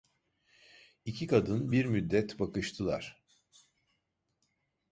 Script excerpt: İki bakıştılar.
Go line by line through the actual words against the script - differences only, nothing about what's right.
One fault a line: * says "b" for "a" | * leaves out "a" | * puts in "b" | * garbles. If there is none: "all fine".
* puts in "kadın bir müddet"